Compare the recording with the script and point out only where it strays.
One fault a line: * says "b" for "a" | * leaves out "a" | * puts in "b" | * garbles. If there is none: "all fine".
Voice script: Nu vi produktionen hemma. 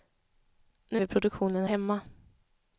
all fine